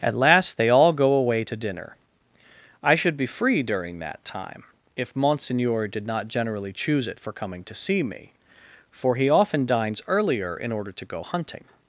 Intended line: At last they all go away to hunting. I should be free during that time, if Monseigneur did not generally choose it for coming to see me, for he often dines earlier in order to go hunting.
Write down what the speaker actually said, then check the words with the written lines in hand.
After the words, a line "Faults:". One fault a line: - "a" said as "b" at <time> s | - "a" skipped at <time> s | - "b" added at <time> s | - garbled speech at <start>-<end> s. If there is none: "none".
At last they all go away to dinner. I should be free during that time, if Monseigneur did not generally choose it for coming to see me, for he often dines earlier in order to go hunting.
Faults:
- "hunting" said as "dinner" at 1.6 s